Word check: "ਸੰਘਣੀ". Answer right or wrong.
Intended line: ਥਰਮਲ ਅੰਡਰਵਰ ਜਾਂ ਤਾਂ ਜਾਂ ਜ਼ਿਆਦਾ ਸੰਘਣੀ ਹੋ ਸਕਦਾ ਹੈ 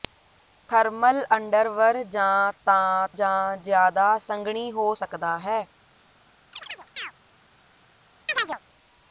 right